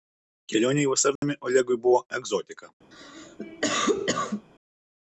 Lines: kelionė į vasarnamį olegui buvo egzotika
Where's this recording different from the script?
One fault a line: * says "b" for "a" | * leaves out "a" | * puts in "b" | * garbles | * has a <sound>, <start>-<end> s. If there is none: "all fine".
* has a dropout, 1.2-1.2 s
* has a cough, 2.9-4.5 s